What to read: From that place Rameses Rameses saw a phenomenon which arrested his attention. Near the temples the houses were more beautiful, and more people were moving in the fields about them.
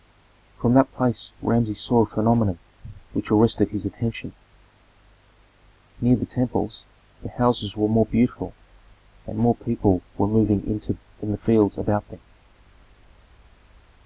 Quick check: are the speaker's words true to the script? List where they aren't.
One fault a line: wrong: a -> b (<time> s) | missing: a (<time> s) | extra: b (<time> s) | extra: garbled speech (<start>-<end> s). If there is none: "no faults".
missing: Rameses (1.8 s)